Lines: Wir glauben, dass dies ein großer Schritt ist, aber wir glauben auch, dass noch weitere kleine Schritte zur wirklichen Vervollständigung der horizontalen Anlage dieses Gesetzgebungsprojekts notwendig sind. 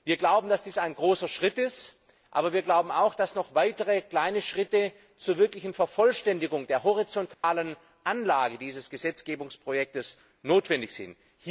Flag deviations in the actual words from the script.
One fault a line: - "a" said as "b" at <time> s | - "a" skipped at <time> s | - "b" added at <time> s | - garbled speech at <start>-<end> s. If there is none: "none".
none